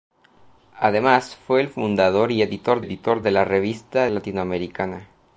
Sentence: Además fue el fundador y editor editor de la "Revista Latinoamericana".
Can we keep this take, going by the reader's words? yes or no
yes